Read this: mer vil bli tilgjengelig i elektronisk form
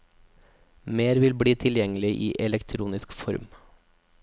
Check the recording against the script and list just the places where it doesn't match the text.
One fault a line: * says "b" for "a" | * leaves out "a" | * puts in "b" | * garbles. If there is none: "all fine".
all fine